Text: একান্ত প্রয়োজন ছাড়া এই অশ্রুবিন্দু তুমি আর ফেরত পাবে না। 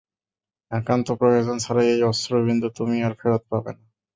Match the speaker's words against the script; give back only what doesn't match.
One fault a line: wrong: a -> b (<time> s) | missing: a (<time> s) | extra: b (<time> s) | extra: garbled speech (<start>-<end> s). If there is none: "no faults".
no faults